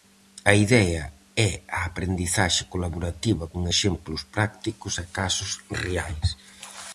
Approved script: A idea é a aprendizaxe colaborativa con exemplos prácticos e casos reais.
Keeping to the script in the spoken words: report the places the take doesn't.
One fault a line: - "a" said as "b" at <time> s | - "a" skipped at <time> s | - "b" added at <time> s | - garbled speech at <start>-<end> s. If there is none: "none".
none